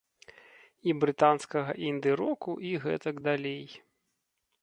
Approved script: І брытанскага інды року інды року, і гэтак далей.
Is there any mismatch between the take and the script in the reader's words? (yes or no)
yes